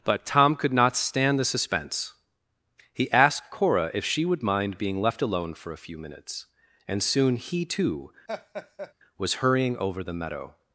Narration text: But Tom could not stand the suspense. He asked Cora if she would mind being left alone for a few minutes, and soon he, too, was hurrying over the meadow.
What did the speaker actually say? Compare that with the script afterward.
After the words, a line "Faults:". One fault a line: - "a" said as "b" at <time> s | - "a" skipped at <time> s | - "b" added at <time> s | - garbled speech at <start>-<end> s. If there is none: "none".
But Tom could not stand the suspense. He asked Cora if she would mind being left alone for a few minutes, and soon he, too, was hurrying over the meadow.
Faults:
none